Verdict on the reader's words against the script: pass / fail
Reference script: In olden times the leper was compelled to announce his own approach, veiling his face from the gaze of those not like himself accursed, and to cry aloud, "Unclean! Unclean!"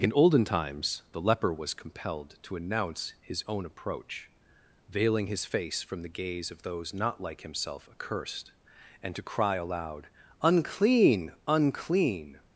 pass